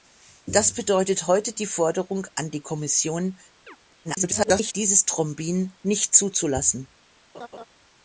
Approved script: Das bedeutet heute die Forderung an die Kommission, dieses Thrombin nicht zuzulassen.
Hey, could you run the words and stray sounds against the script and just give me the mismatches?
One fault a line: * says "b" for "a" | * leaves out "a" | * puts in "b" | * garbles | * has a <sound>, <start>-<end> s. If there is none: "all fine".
* has a chirp, 3.7-3.8 s
* garbles
* has a laugh, 7.3-7.6 s